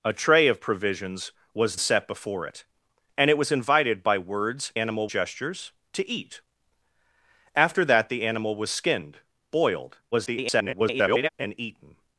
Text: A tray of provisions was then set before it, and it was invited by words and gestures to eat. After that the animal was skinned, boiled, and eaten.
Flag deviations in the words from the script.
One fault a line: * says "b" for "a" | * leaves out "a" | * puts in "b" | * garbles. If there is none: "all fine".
* leaves out "then"
* says "animal" for "and"
* garbles